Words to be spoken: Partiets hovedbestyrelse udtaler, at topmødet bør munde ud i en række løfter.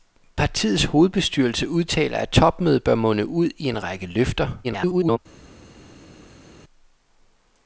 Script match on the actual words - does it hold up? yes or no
no